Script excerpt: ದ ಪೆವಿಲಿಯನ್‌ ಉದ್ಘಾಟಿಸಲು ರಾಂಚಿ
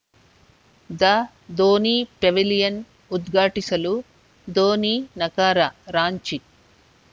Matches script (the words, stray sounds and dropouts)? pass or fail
fail